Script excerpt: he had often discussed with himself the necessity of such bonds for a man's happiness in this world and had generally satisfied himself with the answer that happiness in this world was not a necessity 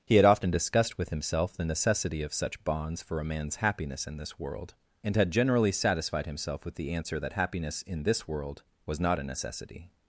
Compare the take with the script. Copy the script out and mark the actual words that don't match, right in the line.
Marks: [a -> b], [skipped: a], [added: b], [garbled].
he had often discussed with himself the necessity of such bonds for a man's happiness in this world and had generally satisfied himself with the answer that happiness in this world was not a necessity